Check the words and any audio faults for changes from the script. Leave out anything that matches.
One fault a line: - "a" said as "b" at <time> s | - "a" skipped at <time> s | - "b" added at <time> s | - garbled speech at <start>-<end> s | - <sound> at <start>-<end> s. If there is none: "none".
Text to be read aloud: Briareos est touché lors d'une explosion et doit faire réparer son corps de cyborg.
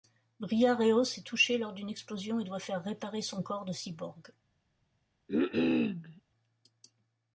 - cough at 5.3-6.2 s